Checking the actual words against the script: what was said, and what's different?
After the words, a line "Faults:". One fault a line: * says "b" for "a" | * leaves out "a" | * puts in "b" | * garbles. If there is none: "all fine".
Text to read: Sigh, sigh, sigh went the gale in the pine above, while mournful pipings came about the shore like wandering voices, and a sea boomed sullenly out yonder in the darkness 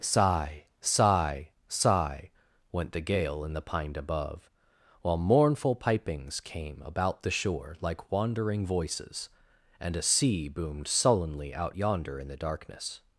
Sigh, sigh, sigh went the gale in the pine above, while mournful pipings came about the shore like wandering voices, and a sea boomed sullenly out yonder in the darkness
Faults:
all fine